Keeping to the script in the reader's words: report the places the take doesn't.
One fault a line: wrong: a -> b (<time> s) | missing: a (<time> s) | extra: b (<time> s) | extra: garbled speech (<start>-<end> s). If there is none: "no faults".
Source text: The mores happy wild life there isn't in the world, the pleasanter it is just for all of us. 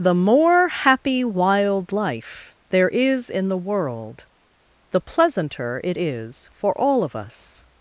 wrong: mores -> more (0.1 s)
wrong: isn't -> is (2.9 s)
missing: just (6.5 s)